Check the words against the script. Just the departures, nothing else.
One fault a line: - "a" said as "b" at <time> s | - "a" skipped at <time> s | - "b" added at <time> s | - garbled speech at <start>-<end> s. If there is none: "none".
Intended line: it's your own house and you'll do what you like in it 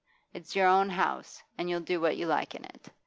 none